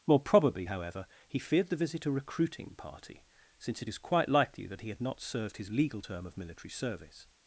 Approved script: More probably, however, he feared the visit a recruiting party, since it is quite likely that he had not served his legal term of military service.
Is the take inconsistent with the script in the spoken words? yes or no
no